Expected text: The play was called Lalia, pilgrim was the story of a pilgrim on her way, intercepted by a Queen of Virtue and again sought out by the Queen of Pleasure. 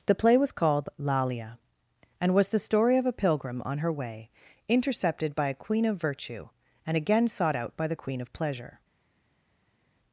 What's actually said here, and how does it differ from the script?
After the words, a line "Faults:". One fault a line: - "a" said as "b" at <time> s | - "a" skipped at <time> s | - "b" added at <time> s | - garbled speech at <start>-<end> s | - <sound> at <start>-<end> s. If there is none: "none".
The play was called Lalia, and was the story of a pilgrim on her way, intercepted by a Queen of Virtue and again sought out by the Queen of Pleasure.
Faults:
- "pilgrim" said as "and" at 2.2 s